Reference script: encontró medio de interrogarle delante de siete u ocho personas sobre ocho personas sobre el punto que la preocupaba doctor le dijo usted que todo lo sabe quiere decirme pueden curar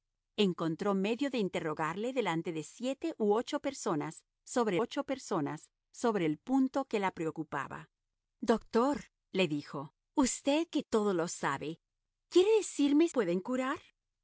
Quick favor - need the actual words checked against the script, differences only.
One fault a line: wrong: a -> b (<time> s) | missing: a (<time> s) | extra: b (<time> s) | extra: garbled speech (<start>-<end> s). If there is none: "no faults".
no faults